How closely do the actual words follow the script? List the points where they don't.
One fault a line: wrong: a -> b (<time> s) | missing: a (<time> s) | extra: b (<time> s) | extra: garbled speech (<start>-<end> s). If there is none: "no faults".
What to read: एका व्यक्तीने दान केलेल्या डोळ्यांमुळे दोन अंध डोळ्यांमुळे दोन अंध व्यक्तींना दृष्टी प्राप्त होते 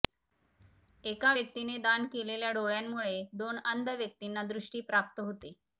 missing: डोळ्यांमुळे दोन अंध (3.9 s)